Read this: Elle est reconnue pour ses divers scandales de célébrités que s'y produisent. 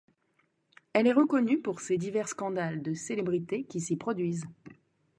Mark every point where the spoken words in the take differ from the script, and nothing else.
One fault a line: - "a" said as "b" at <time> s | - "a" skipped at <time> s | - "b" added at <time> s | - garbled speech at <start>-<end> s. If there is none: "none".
- "que" said as "qui" at 3.6 s